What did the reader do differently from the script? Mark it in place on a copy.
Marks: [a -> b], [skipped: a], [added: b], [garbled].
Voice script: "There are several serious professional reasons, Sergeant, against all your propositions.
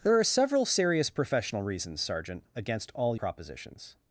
"There are several serious professional reasons, Sergeant, against all [skipped: your] propositions.